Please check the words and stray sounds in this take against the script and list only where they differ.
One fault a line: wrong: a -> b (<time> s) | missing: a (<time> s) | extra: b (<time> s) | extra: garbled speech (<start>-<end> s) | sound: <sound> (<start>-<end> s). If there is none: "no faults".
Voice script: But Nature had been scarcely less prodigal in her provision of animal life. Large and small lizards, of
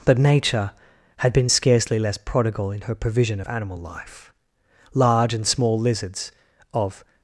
no faults